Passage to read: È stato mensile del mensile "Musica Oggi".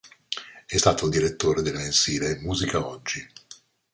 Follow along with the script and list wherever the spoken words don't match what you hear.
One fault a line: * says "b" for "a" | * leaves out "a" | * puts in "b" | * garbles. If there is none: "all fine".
* says "direttore" for "mensile"